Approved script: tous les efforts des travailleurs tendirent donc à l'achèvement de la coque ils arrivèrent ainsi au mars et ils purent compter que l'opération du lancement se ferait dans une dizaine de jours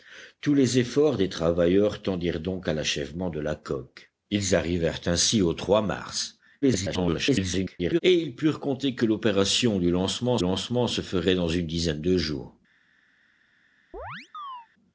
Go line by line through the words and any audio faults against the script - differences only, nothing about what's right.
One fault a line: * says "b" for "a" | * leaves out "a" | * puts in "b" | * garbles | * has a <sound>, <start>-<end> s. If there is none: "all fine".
* garbles
* puts in "lancement"
* has a chirp, 13.9-14.7 s